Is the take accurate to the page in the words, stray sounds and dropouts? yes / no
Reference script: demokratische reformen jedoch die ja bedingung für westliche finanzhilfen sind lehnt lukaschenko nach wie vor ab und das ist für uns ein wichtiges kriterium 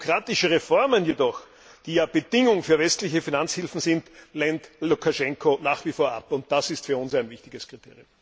yes